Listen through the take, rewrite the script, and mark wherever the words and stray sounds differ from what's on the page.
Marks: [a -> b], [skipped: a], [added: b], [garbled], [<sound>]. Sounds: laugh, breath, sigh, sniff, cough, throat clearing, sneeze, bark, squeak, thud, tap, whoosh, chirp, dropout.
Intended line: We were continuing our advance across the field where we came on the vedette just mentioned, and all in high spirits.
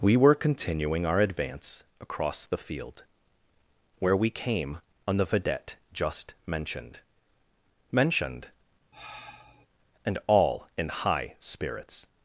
We were continuing our advance across the field where we came on the vedette just mentioned, [added: mentioned] [sigh] and all in high spirits.